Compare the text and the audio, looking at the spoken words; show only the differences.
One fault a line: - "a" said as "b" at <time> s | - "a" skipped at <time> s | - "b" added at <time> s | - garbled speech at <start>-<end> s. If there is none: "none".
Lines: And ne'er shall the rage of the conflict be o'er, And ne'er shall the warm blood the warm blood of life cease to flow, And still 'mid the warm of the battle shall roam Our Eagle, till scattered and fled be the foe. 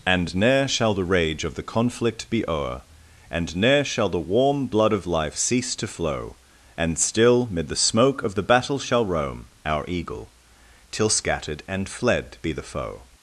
- "the warm blood" skipped at 4.9 s
- "warm" said as "smoke" at 7.8 s